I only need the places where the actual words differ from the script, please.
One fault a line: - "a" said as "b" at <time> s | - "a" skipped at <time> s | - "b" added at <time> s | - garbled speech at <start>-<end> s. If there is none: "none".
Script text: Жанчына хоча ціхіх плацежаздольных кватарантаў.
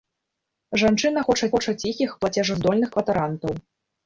- "хоча" added at 1.5 s